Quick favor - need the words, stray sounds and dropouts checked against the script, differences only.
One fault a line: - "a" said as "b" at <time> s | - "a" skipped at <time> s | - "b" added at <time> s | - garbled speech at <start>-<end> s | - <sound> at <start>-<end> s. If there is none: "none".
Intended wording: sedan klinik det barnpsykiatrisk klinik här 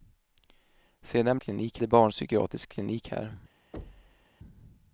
- thud at 3.7-4.3 s